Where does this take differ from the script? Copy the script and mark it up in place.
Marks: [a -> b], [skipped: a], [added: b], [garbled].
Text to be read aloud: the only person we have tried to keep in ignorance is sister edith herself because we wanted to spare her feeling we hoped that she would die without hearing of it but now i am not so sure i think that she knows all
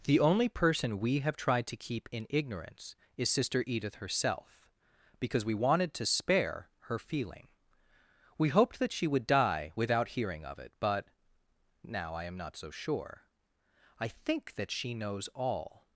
the only person we have tried to keep in ignorance is sister edith herself because we wanted to spare her feeling we hoped that she would die without hearing of it but now i am not so sure i think that she knows all